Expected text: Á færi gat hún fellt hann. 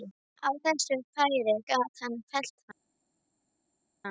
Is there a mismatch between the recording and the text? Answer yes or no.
yes